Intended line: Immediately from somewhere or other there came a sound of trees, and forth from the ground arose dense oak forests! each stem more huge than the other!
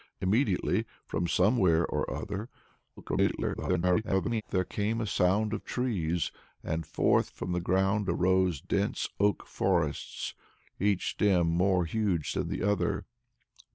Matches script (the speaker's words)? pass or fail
fail